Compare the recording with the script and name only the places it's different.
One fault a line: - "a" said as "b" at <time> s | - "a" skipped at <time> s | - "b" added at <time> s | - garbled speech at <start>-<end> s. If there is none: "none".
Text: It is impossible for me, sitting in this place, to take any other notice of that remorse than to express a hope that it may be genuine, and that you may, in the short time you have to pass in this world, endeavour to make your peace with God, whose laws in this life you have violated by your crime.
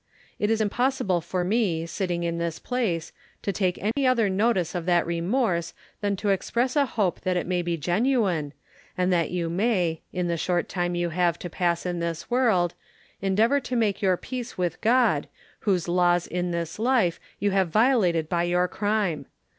none